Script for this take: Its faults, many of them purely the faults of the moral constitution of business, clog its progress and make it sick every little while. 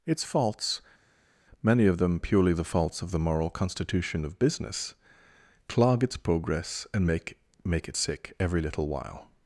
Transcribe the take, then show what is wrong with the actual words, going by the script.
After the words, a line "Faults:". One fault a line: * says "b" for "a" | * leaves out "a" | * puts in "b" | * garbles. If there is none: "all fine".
Its faults, many of them purely the faults of the moral constitution of business, clog its progress and make make it sick every little while.
Faults:
* puts in "make"